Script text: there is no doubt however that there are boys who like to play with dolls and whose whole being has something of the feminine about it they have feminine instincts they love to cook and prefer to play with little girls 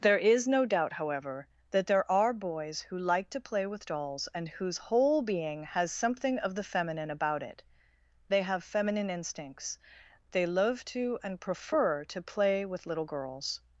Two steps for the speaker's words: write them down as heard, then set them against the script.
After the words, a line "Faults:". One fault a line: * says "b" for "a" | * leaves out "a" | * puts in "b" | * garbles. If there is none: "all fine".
there is no doubt however that there are boys who like to play with dolls and whose whole being has something of the feminine about it they have feminine instincts they love to and prefer to play with little girls
Faults:
* leaves out "cook"